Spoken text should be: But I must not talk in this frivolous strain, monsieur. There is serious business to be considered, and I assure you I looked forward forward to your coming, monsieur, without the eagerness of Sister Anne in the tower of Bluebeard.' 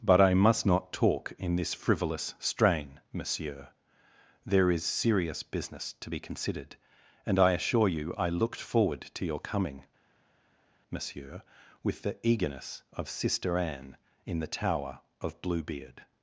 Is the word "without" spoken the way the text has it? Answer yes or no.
no